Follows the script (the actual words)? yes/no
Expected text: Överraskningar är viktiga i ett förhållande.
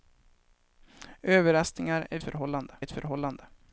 no